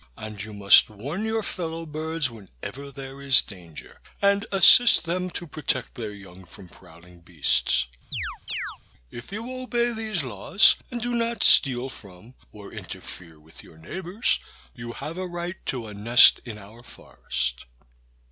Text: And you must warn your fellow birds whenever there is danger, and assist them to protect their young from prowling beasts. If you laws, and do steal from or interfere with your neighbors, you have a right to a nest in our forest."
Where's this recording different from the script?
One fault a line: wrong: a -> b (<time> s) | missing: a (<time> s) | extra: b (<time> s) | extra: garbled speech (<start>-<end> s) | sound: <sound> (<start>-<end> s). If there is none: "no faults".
sound: chirp (8.1-8.8 s)
extra: obey these (9.6 s)
extra: not (11.1 s)